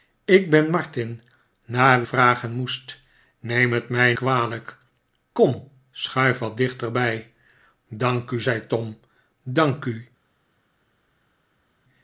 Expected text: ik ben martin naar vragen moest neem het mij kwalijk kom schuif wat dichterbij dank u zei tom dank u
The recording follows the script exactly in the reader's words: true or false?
true